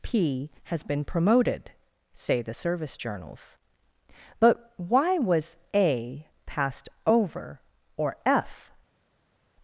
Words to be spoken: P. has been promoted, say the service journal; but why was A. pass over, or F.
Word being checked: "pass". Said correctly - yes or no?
no